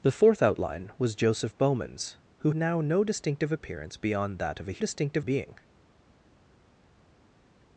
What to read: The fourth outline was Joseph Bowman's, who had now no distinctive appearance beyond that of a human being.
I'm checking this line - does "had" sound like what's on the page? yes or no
no